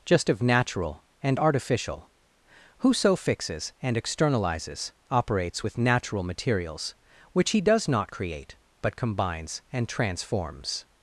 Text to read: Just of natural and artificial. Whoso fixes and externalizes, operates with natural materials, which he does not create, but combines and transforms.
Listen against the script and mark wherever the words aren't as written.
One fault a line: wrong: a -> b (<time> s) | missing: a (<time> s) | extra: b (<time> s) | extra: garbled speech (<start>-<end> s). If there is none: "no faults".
no faults